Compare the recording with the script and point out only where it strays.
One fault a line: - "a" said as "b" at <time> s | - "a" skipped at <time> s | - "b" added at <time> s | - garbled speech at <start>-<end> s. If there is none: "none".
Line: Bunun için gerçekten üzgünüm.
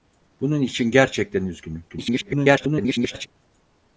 - garbled speech at 1.9-3.3 s